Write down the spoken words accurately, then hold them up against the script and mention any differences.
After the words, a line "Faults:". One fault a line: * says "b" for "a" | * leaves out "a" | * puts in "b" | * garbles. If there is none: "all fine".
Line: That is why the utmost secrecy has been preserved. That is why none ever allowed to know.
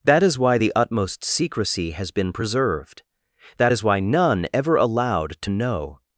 That is why the utmost secrecy has been preserved. That is why none ever allowed to know.
Faults:
all fine